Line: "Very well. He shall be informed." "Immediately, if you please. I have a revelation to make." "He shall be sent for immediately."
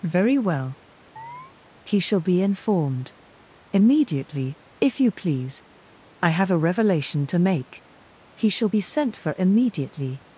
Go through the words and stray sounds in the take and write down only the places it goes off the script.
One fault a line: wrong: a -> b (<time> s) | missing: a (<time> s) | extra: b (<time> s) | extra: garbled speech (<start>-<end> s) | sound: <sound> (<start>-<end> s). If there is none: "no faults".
sound: chirp (1.2-1.5 s)